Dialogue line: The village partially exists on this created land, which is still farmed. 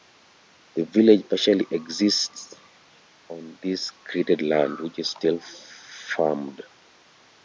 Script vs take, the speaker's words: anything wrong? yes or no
no